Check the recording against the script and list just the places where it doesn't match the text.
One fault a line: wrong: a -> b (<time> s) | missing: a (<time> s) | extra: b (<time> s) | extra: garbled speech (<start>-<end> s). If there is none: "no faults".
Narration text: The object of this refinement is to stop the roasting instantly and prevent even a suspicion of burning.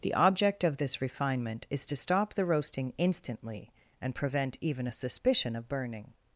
no faults